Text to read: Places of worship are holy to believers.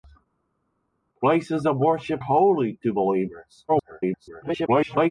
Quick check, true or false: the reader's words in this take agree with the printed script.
false